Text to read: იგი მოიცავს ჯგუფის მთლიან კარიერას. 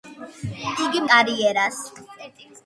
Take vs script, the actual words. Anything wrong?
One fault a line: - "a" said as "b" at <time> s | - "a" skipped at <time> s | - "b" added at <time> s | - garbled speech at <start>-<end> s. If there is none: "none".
- "მოიცავს ჯგუფის მთლიან" skipped at 1.0 s